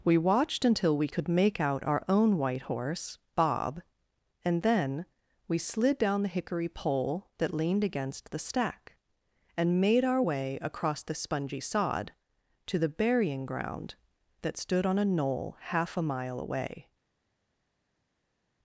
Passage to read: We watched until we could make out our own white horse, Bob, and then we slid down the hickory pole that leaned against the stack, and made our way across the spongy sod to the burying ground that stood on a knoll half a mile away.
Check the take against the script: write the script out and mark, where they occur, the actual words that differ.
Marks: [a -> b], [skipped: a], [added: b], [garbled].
We watched until we could make out our own white horse, Bob, and then we slid down the hickory pole that leaned against the stack, and made our way across the spongy sod to the burying ground that stood on a knoll half a mile away.